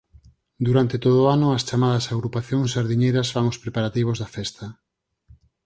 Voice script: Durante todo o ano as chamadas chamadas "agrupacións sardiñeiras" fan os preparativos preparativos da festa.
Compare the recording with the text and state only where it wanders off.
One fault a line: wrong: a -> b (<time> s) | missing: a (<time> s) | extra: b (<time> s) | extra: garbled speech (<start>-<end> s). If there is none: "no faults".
missing: chamadas (2.0 s)
missing: preparativos (4.2 s)